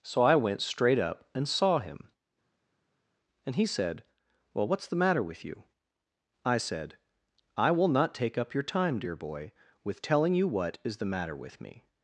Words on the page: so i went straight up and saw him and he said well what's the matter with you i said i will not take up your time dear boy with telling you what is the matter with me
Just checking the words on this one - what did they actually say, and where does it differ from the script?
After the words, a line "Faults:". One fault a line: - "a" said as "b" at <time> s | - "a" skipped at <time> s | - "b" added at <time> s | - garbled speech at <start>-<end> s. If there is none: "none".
so i went straight up and saw him and he said well what's the matter with you i said i will not take up your time dear boy with telling you what is the matter with me
Faults:
none